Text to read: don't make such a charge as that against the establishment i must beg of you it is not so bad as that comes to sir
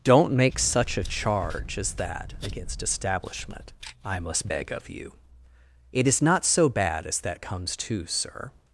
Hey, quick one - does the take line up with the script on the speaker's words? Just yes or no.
no